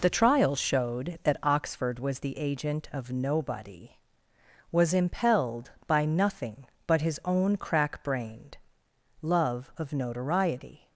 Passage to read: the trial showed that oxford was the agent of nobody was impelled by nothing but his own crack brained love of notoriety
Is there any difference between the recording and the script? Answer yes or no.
no